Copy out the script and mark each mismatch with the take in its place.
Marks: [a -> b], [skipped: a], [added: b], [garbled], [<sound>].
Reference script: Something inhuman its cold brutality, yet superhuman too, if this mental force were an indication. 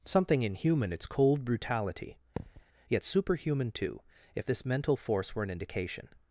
Something inhuman its cold brutality, [thud] yet superhuman too, if this mental force were an indication.